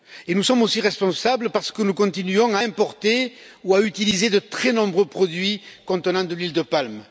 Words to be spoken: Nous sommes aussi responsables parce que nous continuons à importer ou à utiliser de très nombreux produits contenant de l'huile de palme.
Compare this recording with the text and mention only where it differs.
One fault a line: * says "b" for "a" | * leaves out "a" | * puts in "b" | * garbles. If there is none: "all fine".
all fine